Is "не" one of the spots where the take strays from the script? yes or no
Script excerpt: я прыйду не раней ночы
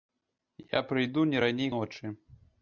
no